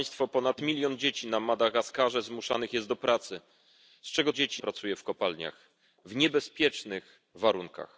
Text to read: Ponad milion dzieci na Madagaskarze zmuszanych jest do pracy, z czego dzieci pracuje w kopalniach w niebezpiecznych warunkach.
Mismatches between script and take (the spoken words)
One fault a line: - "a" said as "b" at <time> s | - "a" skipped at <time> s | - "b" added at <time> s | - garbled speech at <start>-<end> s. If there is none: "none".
none